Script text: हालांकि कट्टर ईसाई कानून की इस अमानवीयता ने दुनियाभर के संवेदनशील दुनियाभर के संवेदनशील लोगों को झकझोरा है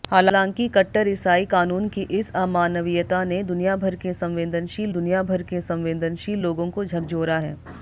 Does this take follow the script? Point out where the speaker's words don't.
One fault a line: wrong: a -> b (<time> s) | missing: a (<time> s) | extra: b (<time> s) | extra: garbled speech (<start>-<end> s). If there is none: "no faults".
no faults